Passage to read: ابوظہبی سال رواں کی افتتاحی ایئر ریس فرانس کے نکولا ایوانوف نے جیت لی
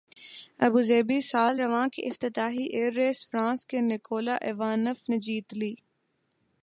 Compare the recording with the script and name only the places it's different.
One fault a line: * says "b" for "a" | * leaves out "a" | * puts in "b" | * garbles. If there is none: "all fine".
all fine